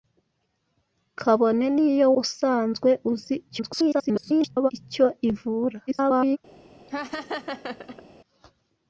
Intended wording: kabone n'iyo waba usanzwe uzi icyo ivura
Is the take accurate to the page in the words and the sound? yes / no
no